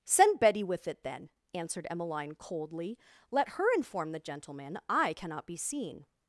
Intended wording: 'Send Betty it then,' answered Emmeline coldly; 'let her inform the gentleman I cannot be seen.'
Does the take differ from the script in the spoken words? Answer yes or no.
yes